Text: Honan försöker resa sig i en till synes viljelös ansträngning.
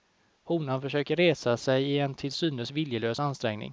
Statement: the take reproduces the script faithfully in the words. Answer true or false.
true